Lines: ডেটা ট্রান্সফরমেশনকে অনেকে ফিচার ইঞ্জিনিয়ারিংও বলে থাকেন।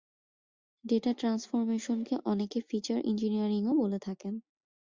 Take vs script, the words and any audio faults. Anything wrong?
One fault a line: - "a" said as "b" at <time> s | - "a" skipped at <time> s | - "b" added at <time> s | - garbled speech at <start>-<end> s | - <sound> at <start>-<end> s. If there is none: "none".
none